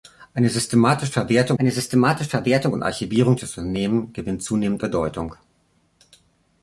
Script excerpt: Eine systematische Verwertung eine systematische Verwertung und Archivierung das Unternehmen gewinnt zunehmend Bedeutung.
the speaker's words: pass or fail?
pass